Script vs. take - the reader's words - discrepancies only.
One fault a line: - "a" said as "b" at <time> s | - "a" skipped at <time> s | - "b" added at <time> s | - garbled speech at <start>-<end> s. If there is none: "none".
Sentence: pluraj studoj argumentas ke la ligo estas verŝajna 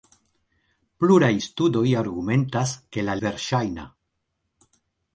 - "ligo estas" skipped at 3.1 s